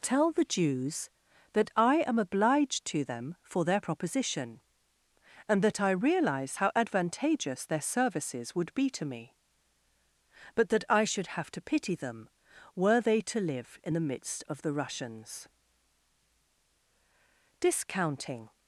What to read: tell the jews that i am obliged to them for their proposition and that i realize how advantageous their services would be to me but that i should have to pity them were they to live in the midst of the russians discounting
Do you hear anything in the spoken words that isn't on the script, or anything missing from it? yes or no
no